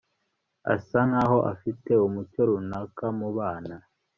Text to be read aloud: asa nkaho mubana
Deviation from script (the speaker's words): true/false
true